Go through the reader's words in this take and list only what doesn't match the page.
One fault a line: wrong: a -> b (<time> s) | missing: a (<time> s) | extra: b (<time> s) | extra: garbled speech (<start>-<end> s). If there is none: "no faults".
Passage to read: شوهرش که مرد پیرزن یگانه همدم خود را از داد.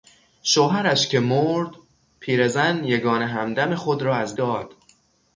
no faults